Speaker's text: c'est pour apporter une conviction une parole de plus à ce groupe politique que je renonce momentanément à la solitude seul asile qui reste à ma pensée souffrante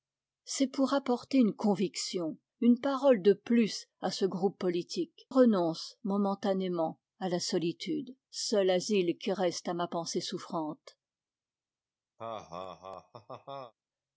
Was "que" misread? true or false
true